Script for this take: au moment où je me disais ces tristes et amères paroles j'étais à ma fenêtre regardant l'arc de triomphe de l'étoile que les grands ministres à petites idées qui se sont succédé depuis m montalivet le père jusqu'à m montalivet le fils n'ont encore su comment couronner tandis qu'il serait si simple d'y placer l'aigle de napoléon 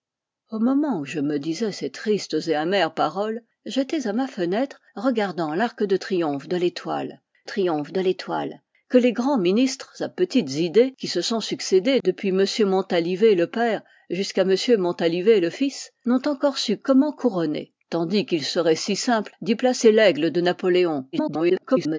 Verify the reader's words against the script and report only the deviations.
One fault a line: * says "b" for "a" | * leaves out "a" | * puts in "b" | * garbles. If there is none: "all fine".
* puts in "triomphe de l'étoile"
* garbles